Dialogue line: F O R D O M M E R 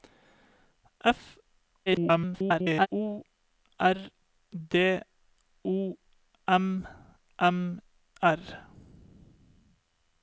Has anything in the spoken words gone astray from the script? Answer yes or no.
yes